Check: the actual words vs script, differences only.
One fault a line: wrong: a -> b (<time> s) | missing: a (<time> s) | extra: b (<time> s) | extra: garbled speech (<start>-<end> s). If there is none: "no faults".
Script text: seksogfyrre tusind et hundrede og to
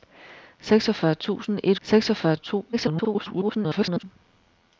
wrong: hundrede -> seksogfyrre (1.8 s)
extra: garbled speech (2.7-4.0 s)